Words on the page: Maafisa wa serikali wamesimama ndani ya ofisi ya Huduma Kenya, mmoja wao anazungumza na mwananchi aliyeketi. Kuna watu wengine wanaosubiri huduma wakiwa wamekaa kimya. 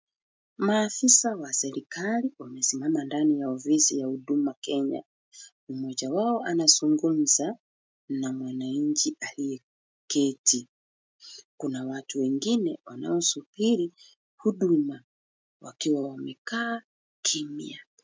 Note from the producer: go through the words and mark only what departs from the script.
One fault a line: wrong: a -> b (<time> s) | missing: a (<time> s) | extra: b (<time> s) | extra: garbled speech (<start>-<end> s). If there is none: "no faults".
no faults